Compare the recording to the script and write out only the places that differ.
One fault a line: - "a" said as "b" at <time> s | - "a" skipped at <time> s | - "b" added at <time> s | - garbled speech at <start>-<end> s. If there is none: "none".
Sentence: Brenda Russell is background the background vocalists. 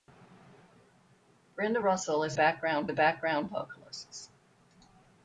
none